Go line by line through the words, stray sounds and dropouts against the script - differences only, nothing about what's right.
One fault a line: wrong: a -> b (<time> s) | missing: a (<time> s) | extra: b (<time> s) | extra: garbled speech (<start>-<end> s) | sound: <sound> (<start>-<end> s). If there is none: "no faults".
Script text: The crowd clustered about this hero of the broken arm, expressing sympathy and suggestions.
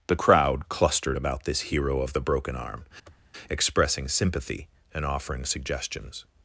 sound: sniff (3.0-3.3 s)
extra: offering (5.0 s)